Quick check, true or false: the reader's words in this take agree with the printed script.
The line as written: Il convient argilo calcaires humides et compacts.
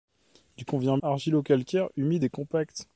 true